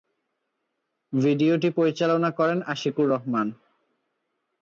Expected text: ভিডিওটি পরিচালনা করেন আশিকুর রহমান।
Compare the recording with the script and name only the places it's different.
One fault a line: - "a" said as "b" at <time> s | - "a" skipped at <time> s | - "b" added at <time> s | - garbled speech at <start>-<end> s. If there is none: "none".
none